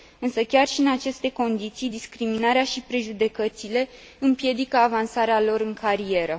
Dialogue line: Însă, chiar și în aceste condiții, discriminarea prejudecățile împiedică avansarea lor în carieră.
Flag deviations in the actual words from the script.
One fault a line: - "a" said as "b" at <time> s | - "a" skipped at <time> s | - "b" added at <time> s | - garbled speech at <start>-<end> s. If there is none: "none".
- "și" added at 2.6 s